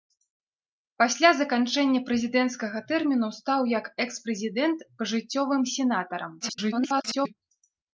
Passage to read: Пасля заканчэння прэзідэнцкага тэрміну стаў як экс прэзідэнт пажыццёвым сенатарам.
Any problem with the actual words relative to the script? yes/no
yes